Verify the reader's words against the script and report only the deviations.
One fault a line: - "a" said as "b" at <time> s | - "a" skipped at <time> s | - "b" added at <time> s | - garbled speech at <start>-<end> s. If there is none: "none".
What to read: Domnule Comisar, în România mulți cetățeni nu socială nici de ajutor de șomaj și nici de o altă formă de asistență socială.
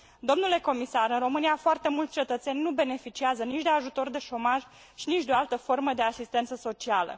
- "foarte" added at 1.6 s
- "socială" said as "beneficiază" at 2.7 s